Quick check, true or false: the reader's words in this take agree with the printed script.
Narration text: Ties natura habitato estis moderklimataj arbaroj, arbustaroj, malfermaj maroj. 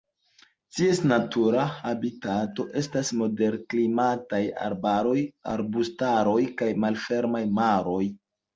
false